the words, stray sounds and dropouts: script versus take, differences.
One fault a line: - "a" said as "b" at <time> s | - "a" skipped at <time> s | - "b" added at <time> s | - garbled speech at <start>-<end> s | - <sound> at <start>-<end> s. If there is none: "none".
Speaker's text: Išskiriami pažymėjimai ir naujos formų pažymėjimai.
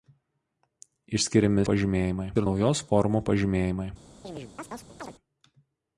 - chirp at 4.2-5.1 s